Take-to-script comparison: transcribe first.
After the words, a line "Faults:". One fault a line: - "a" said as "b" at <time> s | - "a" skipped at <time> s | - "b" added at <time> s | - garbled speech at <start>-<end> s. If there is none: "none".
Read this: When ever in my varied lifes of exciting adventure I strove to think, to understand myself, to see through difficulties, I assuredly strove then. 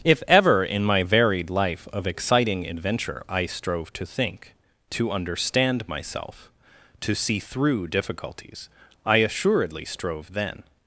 If ever in my varied life of exciting adventure I strove to think, to understand myself, to see through difficulties, I assuredly strove then.
Faults:
- "When" said as "If" at 0.0 s
- "lifes" said as "life" at 1.5 s